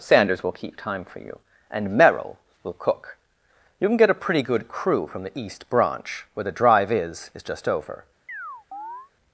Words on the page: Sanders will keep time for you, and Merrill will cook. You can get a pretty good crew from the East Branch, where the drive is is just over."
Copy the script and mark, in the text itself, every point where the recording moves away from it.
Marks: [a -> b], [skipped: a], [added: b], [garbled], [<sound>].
Sanders will keep time for you, and Merrill will cook. You can get a pretty good crew from the East Branch, where the drive is is just over." [chirp]